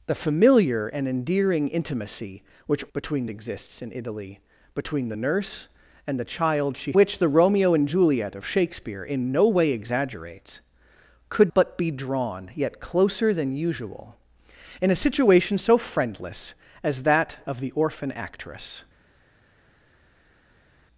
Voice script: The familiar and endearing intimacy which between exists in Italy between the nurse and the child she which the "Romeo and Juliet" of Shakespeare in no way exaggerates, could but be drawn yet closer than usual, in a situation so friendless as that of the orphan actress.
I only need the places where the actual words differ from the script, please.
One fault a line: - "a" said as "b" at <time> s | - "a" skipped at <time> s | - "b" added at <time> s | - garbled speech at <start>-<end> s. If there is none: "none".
none